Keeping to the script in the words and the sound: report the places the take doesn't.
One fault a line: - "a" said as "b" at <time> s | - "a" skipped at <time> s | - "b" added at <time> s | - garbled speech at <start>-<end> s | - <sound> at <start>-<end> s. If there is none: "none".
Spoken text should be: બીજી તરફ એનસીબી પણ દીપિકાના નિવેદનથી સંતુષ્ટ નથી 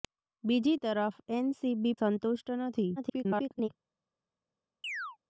- "પણ દીપિકાના નિવેદનથી" skipped at 1.9 s
- garbled speech at 3.0-3.7 s
- chirp at 4.8-5.2 s